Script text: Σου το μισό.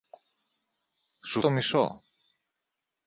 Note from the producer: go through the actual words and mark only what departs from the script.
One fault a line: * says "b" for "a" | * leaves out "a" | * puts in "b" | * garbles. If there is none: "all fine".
all fine